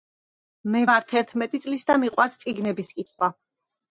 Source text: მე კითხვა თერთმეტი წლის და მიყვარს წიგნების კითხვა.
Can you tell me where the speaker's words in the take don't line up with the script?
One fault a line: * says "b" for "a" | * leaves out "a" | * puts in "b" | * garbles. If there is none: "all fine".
* says "ვარ" for "კითხვა"